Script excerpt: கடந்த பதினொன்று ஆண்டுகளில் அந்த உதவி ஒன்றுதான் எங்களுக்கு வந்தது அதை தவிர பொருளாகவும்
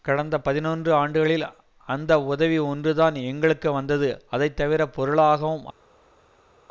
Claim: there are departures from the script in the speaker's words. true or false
false